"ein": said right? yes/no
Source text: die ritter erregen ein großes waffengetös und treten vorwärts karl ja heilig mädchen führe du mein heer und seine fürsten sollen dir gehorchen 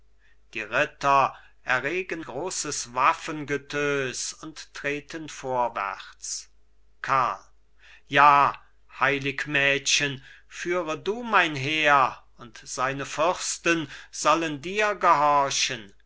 no